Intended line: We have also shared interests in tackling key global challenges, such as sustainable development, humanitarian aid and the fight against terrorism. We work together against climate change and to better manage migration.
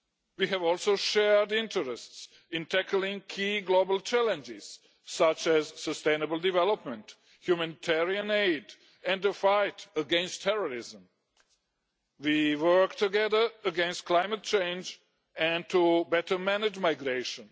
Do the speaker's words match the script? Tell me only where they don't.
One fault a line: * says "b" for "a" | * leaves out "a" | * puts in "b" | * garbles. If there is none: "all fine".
all fine